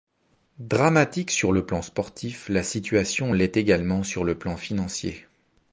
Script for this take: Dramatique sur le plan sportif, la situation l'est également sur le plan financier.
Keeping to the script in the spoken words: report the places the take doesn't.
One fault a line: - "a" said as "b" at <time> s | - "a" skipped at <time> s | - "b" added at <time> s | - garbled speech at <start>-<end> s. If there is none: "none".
none